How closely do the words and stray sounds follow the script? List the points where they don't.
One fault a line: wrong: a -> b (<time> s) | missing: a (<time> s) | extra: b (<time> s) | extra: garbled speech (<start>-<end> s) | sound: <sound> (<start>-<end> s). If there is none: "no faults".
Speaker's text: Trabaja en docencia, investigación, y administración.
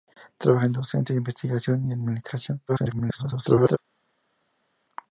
extra: garbled speech (2.7-3.8 s)